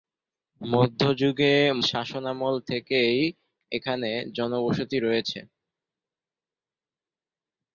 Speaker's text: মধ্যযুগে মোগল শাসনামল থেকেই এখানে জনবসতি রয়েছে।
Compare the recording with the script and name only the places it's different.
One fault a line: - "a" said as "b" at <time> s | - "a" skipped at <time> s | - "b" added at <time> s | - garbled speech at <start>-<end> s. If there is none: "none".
- "মোগল" skipped at 1.5 s